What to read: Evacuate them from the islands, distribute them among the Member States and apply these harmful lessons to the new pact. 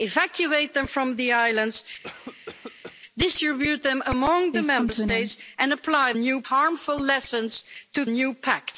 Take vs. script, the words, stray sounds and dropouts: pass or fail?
fail